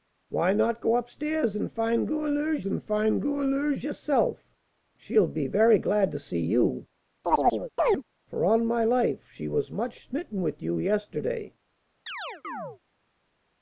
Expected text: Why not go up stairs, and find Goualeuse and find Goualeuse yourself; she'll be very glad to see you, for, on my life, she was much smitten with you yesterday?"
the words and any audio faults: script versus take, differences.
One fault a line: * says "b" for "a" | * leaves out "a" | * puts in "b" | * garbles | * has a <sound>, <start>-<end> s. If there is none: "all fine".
* has a chirp, 7.2-8.0 s
* has a chirp, 12.1-12.8 s